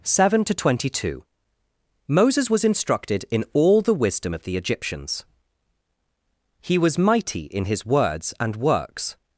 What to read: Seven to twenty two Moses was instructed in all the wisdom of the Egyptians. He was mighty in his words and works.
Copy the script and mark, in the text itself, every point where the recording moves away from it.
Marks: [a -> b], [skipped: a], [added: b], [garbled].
Seven to twenty two Moses was instructed in all the wisdom of the Egyptians. He was mighty in his words and works.